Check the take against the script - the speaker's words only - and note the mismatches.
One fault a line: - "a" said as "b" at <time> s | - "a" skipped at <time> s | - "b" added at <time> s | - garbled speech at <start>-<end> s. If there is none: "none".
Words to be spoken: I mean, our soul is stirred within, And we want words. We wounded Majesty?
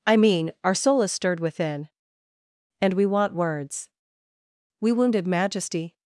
none